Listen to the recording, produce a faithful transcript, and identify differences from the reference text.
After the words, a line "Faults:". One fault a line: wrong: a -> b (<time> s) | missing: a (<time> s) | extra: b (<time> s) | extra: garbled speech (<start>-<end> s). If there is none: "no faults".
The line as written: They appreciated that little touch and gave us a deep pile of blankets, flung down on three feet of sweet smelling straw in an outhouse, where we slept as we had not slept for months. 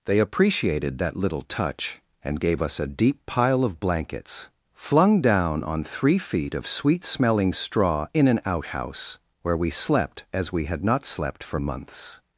They appreciated that little touch and gave us a deep pile of blankets, flung down on three feet of sweet smelling straw in an outhouse, where we slept as we had not slept for months.
Faults:
no faults